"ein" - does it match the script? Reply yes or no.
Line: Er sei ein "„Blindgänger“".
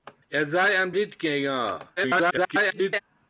yes